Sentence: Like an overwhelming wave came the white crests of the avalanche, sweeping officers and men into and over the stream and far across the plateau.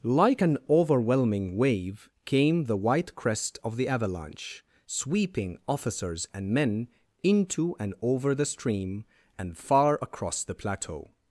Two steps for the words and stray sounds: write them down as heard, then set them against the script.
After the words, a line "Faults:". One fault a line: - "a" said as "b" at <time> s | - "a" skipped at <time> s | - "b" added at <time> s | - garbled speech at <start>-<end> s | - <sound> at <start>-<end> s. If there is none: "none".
Like an overwhelming wave came the white crest of the avalanche, sweeping officers and men into and over the stream and far across the plateau.
Faults:
- "crests" said as "crest" at 3.2 s